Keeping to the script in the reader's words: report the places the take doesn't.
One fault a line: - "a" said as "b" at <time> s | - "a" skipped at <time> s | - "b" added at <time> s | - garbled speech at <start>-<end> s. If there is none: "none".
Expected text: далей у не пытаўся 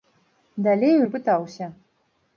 none